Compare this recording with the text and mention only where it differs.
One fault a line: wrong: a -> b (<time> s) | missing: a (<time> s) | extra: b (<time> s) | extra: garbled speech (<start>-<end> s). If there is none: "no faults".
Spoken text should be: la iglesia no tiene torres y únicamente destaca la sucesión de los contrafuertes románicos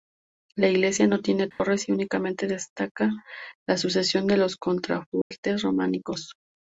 no faults